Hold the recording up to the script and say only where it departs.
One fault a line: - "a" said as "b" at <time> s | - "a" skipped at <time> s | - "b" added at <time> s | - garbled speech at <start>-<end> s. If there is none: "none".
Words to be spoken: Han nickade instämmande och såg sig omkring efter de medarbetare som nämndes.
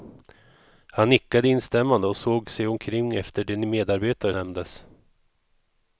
- "som" skipped at 4.3 s